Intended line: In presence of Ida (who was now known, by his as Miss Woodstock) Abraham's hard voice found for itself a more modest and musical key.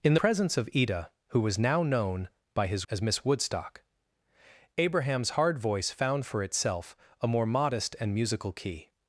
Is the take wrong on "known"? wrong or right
right